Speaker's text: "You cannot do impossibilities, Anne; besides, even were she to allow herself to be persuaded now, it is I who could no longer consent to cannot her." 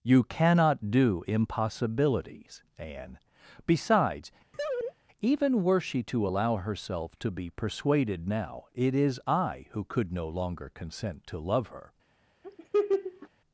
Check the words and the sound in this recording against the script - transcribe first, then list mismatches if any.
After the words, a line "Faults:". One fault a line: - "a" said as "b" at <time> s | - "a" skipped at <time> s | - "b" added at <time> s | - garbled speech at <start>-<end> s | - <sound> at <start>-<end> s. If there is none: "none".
"You cannot do impossibilities, Anne; besides, even were she to allow herself to be persuaded now, it is I who could no longer consent to love her."
Faults:
- laugh at 4.5-4.9 s
- "cannot" said as "love" at 11.4 s
- laugh at 12.4-13.3 s